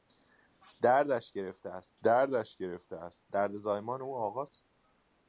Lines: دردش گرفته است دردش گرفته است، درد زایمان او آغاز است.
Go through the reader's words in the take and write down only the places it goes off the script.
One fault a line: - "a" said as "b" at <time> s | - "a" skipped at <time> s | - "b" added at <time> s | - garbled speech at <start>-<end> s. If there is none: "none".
none